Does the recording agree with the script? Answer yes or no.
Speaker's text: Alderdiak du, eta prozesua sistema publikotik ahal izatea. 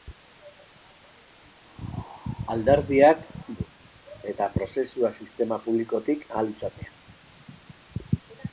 yes